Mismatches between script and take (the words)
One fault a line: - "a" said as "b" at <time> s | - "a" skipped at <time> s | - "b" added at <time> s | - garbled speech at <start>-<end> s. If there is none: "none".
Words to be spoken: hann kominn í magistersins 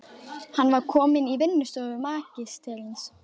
- "var" added at 0.8 s
- "vinnustofu" added at 1.4 s